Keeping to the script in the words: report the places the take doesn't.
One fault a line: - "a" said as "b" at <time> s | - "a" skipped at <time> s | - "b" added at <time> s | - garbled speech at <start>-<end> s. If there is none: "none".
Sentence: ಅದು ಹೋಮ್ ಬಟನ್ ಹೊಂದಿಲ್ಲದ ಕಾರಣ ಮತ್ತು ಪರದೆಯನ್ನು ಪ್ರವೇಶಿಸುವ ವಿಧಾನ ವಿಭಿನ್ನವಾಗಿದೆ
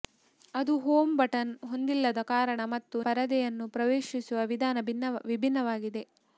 none